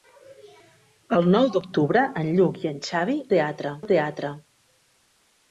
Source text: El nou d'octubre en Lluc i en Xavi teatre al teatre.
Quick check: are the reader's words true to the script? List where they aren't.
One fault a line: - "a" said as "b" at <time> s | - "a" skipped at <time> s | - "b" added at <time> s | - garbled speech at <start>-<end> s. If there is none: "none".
none